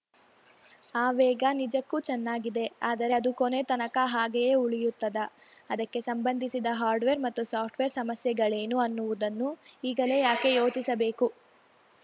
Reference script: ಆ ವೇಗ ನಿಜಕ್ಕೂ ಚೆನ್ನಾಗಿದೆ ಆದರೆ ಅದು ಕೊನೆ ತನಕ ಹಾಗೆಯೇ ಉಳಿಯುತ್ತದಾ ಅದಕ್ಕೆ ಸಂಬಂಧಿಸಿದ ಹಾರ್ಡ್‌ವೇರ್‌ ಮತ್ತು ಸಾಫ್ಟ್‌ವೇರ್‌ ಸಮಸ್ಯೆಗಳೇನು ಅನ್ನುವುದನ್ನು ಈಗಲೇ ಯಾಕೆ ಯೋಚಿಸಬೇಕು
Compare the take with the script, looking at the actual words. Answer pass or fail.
pass